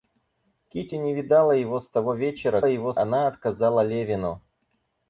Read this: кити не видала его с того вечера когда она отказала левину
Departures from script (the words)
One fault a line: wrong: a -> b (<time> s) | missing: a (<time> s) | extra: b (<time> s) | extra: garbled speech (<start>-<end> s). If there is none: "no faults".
wrong: когда -> его (2.6 s)